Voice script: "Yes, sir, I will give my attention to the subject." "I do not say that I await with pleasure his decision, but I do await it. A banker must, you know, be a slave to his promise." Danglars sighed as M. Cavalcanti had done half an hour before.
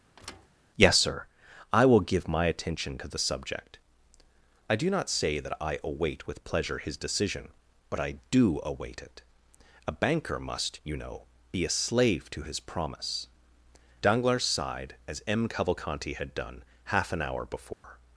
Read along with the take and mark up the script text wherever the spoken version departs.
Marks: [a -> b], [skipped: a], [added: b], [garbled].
"Yes, sir, I will give my attention to the subject." "I do not say that I await with pleasure his decision, but I do await it. A banker must, you know, be a slave to his promise." Danglars sighed as M. Cavalcanti had done half an hour before.